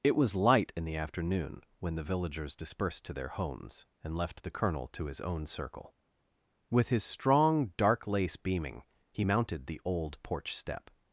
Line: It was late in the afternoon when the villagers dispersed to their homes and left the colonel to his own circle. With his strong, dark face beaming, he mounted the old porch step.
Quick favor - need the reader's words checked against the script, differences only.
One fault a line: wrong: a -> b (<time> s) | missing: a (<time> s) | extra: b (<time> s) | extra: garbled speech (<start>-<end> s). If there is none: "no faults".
wrong: late -> light (0.3 s)
wrong: face -> lace (8.1 s)